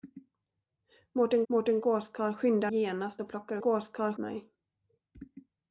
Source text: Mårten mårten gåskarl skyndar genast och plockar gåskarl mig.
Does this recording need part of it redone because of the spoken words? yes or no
no